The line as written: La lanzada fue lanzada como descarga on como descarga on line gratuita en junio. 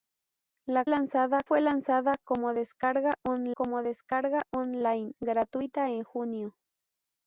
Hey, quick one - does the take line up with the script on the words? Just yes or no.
yes